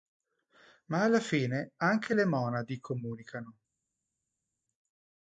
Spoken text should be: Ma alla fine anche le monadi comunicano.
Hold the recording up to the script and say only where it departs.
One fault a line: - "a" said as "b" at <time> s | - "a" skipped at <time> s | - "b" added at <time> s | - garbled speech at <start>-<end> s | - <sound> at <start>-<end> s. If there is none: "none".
none